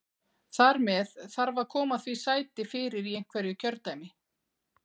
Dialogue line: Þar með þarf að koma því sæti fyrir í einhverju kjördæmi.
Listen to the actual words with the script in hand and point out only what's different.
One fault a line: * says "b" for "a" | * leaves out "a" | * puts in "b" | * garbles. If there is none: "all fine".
all fine